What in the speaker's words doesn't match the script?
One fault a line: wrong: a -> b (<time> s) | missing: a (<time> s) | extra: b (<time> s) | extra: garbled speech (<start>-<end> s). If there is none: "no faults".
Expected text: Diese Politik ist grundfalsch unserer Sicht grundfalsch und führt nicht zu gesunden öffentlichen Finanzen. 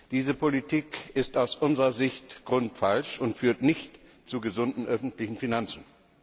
wrong: grundfalsch -> aus (1.4 s)